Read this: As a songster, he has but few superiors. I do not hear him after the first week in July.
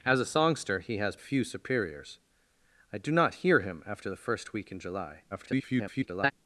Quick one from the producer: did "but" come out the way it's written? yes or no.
no